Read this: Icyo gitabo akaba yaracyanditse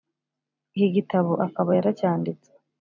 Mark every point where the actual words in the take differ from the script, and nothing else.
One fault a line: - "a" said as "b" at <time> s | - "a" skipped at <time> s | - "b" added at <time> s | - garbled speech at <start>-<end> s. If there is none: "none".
- "Icyo" said as "Iki" at 0.8 s